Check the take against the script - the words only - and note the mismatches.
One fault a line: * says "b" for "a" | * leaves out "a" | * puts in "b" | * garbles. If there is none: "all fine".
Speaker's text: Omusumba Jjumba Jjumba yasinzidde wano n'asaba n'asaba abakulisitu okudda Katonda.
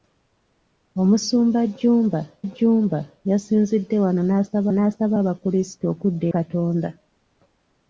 all fine